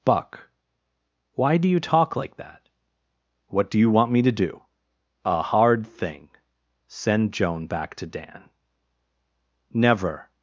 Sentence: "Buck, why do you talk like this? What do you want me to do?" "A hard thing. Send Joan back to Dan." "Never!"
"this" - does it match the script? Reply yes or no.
no